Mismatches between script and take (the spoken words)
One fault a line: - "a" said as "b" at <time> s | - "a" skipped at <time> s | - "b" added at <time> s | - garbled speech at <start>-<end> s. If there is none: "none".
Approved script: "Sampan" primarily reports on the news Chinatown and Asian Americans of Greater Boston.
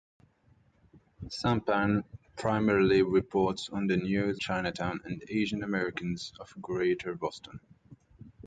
none